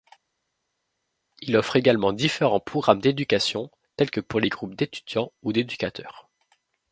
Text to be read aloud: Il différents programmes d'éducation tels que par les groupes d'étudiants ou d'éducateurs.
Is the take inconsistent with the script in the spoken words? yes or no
yes